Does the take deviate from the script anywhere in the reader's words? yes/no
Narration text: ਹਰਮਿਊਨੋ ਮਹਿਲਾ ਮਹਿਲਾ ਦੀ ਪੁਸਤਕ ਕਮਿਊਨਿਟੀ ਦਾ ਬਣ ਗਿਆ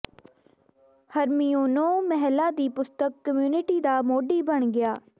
yes